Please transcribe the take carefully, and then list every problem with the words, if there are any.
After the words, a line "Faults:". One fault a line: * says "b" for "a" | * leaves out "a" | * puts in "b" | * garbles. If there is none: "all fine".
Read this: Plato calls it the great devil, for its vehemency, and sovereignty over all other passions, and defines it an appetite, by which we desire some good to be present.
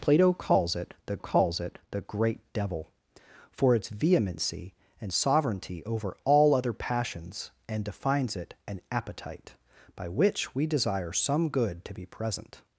Plato calls it the calls it the great devil, for its vehemency, and sovereignty over all other passions, and defines it an appetite, by which we desire some good to be present.
Faults:
* puts in "calls it the"